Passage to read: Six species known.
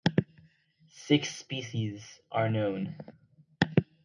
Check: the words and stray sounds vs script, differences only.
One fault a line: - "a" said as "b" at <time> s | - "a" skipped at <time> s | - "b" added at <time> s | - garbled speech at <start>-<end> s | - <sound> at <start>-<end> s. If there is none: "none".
- "are" added at 2.3 s